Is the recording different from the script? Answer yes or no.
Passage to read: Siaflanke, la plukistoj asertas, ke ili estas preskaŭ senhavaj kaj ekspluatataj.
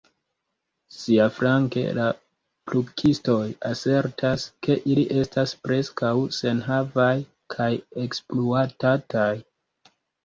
no